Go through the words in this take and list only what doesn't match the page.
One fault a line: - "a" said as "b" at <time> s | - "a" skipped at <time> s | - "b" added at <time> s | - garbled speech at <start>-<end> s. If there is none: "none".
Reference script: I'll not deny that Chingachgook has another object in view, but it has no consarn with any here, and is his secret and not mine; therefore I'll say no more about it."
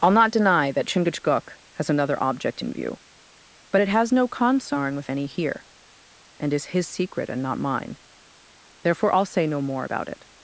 none